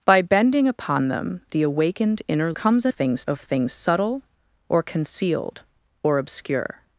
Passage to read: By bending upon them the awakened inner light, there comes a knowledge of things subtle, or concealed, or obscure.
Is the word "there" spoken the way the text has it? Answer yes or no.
no